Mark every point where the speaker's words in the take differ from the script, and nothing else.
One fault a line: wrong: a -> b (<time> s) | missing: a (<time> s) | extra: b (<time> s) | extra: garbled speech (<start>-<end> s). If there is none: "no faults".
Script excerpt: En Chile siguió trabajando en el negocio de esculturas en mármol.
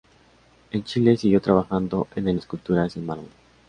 missing: negocio (2.4 s)